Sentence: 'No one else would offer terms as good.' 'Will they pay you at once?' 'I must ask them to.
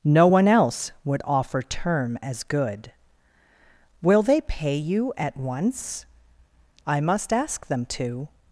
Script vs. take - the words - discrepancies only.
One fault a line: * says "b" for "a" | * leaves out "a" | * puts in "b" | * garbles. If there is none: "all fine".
* says "term" for "terms"